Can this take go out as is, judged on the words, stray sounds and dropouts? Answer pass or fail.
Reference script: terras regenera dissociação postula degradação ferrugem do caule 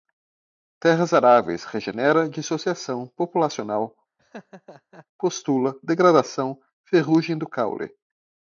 fail